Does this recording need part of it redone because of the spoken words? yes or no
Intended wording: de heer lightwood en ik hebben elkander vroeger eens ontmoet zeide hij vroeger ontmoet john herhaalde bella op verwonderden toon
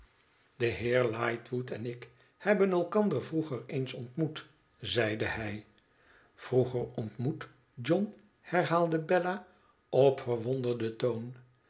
no